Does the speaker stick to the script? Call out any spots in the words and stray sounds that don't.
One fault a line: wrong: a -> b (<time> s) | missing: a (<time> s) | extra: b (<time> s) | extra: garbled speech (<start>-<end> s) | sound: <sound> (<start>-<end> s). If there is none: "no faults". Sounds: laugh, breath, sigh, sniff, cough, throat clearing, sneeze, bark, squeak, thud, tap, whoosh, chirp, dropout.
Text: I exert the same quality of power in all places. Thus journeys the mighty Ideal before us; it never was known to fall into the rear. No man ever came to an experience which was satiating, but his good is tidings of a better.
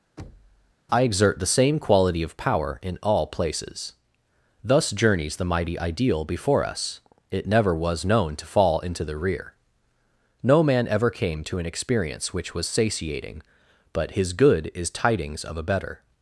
sound: thud (0.2-0.7 s)